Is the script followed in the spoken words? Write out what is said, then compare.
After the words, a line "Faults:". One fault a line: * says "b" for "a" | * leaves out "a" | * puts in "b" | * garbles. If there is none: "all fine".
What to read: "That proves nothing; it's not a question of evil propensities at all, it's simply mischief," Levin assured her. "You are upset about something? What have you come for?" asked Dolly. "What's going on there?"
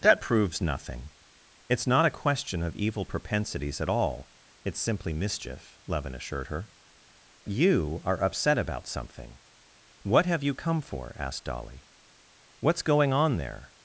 "That proves nothing; it's not a question of evil propensities at all, it's simply mischief," Levin assured her. "You are upset about something? What have you come for?" asked Dolly. "What's going on there?"
Faults:
all fine